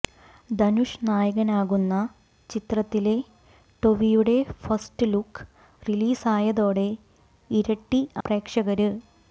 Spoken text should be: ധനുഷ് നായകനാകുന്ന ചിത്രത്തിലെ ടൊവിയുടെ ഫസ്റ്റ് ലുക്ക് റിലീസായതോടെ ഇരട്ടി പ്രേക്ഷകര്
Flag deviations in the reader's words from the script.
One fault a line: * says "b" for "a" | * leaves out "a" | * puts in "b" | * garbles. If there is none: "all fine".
all fine